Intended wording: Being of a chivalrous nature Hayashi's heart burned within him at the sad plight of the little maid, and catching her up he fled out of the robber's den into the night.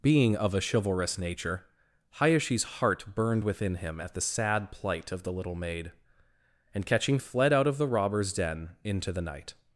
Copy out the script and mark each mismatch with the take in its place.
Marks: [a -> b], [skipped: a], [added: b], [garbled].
Being of a chivalrous nature Hayashi's heart burned within him at the sad plight of the little maid, and catching [skipped: her up he] fled out of the robber's den into the night.